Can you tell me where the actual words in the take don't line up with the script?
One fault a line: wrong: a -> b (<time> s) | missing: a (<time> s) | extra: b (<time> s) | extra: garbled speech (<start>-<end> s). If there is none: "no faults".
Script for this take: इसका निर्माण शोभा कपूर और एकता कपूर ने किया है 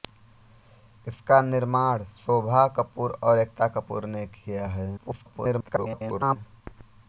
extra: garbled speech (5.0-6.4 s)